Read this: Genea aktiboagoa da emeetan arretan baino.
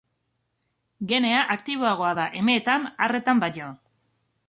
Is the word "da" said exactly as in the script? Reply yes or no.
yes